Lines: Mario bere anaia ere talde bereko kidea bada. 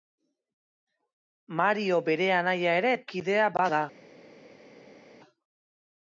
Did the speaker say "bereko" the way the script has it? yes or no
no